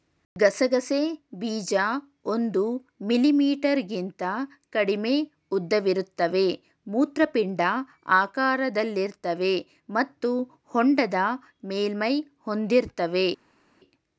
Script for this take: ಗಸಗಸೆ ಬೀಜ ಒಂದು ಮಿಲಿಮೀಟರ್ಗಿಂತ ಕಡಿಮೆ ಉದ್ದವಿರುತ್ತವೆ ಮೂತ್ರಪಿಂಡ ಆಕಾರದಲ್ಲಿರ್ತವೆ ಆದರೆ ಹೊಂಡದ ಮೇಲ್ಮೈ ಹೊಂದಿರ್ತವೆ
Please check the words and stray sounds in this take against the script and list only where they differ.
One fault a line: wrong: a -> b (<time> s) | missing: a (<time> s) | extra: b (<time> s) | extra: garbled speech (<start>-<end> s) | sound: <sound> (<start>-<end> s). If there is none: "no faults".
wrong: ಆದರೆ -> ಮತ್ತು (9.9 s)